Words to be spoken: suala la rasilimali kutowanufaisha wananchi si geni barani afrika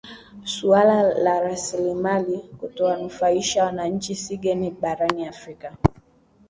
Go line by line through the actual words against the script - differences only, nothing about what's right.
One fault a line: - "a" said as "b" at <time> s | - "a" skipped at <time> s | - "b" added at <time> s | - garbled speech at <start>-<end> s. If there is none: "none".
none